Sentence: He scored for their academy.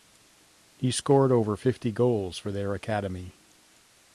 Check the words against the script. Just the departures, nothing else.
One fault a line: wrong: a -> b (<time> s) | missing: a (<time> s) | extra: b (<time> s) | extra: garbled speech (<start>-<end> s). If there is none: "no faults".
extra: over fifty goals (1.3 s)